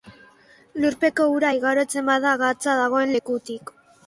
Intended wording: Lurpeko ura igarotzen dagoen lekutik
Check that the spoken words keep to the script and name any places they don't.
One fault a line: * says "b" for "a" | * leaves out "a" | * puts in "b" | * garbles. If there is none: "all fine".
* puts in "bada gatza"